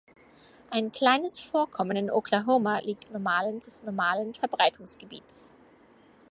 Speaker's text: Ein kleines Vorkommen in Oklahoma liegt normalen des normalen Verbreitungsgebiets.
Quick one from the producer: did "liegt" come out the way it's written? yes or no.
yes